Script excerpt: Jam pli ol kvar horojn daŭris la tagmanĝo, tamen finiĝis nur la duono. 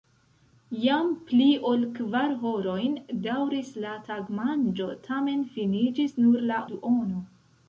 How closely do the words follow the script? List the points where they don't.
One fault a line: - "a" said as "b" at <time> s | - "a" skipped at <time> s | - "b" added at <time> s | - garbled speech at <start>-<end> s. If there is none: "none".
none